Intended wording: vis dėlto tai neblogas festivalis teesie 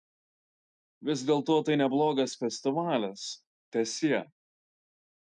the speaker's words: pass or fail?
pass